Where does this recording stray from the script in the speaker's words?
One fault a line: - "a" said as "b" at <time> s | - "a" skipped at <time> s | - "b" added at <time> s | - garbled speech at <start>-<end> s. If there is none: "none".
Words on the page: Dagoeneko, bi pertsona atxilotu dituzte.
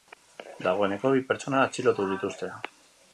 none